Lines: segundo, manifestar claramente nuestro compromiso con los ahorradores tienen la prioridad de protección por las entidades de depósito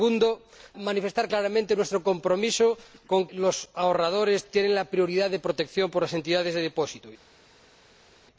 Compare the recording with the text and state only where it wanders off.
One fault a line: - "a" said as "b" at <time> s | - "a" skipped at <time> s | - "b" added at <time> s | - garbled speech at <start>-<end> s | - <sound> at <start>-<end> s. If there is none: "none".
none